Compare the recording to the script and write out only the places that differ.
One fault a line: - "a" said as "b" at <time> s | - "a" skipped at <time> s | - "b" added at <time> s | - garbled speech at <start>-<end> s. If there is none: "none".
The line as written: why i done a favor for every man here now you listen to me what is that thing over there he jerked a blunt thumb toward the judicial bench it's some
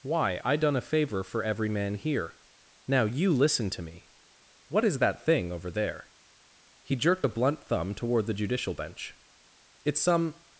none